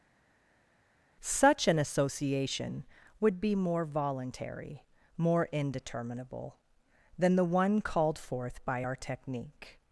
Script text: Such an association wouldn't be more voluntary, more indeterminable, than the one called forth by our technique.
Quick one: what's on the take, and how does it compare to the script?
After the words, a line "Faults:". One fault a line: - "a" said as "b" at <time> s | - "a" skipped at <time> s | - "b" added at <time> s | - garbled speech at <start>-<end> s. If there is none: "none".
Such an association would be more voluntary, more indeterminable, than the one called forth by our technique.
Faults:
- "wouldn't" said as "would" at 3.2 s